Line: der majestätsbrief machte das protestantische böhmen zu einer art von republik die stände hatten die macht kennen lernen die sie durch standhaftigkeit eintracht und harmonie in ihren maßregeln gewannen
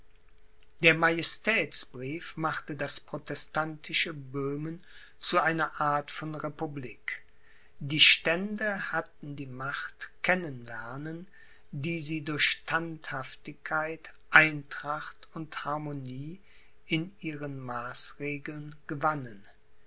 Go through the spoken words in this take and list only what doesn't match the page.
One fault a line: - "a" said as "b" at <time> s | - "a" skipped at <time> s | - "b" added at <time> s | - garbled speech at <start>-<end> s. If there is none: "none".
none